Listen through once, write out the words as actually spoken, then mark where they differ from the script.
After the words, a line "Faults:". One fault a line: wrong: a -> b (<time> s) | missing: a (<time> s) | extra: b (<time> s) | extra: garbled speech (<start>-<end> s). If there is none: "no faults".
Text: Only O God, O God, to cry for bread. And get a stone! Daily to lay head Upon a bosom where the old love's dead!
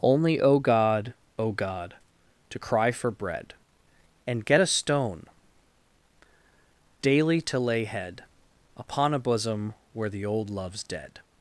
Only O God, O God, to cry for bread. And get a stone! Daily to lay head Upon a bosom where the old love's dead!
Faults:
no faults